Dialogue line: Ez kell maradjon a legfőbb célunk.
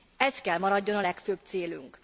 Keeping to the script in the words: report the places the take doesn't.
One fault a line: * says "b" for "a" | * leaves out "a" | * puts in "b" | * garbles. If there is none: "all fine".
all fine